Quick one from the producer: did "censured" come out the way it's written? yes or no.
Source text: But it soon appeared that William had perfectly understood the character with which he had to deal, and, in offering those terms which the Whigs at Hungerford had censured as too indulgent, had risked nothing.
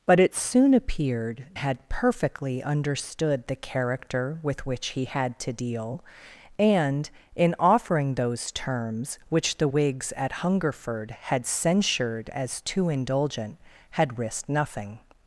yes